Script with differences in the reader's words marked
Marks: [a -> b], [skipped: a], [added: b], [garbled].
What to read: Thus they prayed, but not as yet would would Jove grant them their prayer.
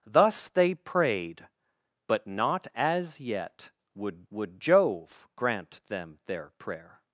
Thus they prayed, but not as yet would would Jove grant them their prayer.